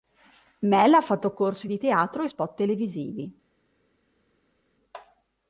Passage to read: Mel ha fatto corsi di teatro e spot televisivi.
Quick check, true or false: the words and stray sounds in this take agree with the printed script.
true